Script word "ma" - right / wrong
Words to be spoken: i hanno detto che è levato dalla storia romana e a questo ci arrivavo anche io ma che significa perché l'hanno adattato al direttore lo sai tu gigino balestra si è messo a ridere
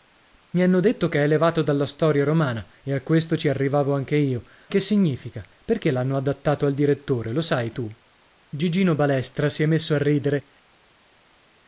wrong